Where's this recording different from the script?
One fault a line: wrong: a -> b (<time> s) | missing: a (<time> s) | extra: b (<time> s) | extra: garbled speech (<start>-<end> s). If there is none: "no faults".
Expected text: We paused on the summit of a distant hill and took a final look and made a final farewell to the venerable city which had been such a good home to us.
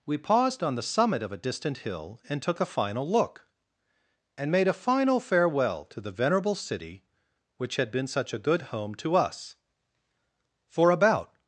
extra: For about (10.7 s)